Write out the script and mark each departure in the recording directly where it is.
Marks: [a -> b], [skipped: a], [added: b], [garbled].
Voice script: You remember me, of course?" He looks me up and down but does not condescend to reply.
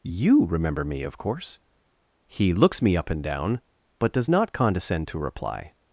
You remember me, of course?" He looks me up and down but does not condescend to reply.